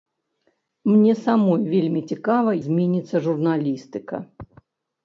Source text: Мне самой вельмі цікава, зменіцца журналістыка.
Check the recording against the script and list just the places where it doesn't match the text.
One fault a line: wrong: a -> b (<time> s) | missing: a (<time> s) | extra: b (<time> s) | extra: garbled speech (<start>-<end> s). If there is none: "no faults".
no faults